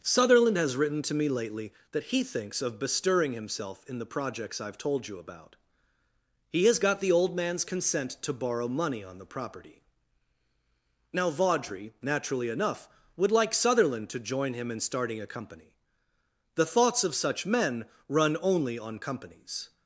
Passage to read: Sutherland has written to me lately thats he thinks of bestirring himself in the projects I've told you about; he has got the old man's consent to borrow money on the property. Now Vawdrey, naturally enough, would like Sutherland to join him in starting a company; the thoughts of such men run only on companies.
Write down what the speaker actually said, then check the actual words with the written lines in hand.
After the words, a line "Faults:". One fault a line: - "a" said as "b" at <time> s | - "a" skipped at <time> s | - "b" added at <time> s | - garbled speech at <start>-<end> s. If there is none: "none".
Sutherland has written to me lately that he thinks of bestirring himself in the projects I've told you about; he has got the old man's consent to borrow money on the property. Now Vawdrey, naturally enough, would like Sutherland to join him in starting a company; the thoughts of such men run only on companies.
Faults:
- "thats" said as "that" at 1.9 s